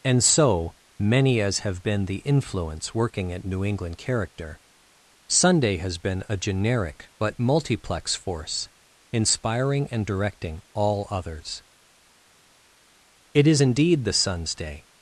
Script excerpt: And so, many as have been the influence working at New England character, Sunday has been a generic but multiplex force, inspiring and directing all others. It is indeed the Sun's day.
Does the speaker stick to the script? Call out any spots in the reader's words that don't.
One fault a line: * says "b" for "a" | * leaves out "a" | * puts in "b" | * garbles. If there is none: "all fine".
all fine